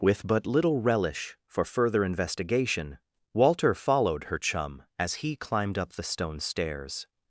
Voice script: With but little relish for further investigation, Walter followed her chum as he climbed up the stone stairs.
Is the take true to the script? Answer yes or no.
yes